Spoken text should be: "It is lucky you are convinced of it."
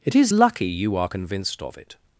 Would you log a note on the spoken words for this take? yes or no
no